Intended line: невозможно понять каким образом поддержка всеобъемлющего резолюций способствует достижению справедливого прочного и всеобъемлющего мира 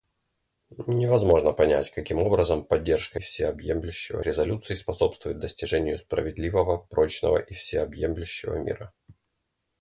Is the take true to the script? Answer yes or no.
yes